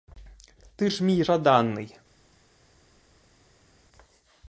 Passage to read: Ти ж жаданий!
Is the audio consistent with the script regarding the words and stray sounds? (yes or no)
no